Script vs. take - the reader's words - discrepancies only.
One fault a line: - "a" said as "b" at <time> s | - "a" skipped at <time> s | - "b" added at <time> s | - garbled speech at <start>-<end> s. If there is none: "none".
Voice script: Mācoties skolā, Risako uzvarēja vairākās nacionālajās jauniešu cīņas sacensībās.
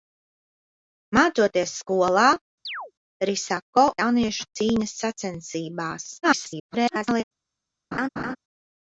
- "uzvarēja vairākās nacionālajās" skipped at 3.9 s
- garbled speech at 6.2-7.2 s